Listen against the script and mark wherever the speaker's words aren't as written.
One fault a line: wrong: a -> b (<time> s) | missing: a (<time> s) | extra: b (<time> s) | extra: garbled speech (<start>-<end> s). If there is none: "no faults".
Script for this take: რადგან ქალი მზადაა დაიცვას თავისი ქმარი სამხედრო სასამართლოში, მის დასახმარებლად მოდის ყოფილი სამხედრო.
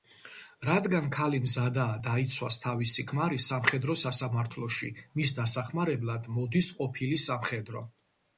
no faults